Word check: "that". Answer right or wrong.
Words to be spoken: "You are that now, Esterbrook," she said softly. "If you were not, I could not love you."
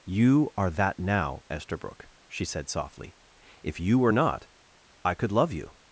right